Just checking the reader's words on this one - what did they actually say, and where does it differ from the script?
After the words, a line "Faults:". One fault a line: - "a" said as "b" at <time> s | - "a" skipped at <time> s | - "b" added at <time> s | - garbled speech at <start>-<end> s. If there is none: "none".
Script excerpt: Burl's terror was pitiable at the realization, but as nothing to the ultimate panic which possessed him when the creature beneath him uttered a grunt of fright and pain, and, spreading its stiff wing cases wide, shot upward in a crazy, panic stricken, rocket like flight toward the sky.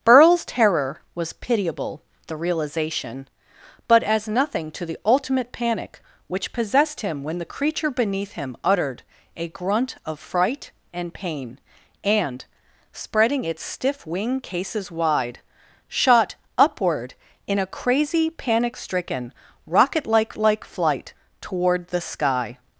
Burl's terror was pitiable the realization, but as nothing to the ultimate panic which possessed him when the creature beneath him uttered a grunt of fright and pain, and, spreading its stiff wing cases wide, shot upward in a crazy, panic stricken, rocket like like flight toward the sky.
Faults:
- "at" skipped at 2.0 s
- "like" added at 20.4 s